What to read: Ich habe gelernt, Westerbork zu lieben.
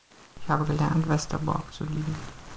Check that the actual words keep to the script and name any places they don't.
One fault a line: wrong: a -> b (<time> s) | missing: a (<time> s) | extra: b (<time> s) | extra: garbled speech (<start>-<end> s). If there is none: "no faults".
no faults